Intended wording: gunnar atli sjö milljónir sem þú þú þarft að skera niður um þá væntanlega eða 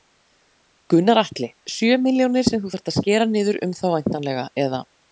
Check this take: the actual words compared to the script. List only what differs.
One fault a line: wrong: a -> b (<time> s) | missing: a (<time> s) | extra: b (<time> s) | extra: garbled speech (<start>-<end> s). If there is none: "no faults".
missing: þú (2.8 s)